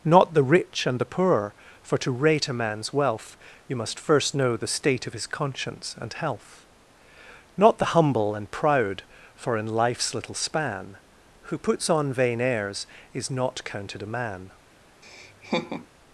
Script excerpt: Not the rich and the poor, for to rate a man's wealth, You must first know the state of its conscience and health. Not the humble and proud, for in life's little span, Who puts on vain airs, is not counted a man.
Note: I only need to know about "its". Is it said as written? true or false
false